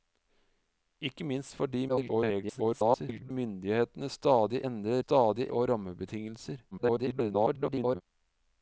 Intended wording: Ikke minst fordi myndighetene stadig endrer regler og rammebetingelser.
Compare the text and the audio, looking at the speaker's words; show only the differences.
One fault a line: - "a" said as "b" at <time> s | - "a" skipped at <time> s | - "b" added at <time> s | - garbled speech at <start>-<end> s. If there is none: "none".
- garbled speech at 1.9-3.3 s
- "regler" said as "stadig" at 5.0 s
- garbled speech at 6.7-8.0 s